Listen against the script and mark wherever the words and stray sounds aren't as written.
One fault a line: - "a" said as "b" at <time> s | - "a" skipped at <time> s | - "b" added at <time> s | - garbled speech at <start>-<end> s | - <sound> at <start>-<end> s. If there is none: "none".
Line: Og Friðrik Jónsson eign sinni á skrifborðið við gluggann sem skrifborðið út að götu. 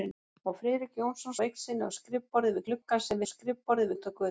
none